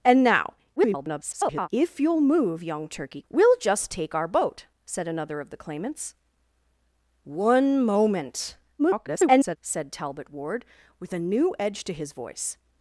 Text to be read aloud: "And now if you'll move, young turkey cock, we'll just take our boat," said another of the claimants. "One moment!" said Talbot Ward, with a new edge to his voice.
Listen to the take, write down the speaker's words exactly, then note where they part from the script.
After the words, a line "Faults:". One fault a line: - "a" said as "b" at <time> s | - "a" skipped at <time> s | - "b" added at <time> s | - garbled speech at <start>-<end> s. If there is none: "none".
"And now [garbled] if you'll move, young turkey we'll just take our boat," said another of the claimants. "One moment!" [garbled] said Talbot Ward, with a new edge to his voice.
Faults:
- garbled speech at 0.8-1.7 s
- "cock" skipped at 3.2 s
- garbled speech at 8.8-9.6 s